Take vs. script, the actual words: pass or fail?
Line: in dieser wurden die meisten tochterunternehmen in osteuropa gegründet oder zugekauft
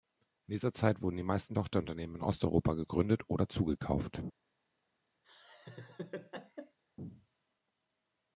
fail